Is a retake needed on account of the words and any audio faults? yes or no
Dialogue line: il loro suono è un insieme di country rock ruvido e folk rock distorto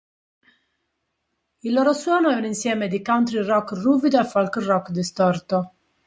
no